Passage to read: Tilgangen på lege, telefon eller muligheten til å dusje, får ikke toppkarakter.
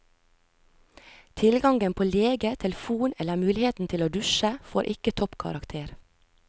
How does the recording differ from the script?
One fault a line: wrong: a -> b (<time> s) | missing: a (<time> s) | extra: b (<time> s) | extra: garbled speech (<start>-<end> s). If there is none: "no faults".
no faults